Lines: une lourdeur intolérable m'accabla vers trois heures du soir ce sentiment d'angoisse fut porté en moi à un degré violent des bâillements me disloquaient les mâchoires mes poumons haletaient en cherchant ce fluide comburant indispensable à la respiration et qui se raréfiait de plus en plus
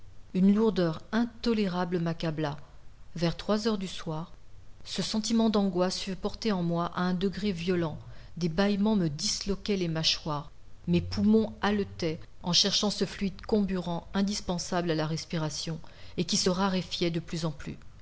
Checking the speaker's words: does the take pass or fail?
pass